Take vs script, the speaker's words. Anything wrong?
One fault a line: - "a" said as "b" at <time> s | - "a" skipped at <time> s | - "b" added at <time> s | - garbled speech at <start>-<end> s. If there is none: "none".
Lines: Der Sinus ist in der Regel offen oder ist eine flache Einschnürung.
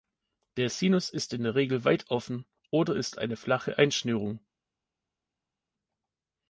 - "weit" added at 1.9 s